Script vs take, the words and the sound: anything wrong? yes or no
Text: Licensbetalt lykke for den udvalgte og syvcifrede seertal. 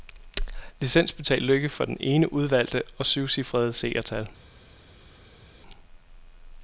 yes